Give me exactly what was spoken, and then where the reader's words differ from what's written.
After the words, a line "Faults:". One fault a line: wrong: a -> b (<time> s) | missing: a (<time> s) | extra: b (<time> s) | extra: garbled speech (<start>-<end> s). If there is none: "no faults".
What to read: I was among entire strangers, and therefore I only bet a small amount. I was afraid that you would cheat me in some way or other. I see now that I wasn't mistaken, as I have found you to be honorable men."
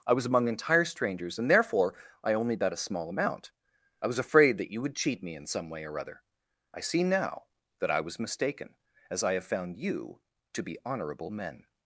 I was among entire strangers, and therefore I only bet a small amount. I was afraid that you would cheat me in some way or other. I see now that I was mistaken, as I have found you to be honorable men."
Faults:
wrong: wasn't -> was (8.0 s)